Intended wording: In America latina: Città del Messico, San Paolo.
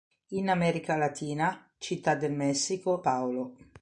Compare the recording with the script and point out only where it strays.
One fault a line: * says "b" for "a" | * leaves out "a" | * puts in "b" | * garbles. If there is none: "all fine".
* leaves out "San"